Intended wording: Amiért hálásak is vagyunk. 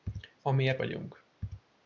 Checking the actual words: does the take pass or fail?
fail